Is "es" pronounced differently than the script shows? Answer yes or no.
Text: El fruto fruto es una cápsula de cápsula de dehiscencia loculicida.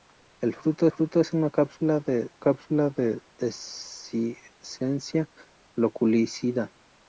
no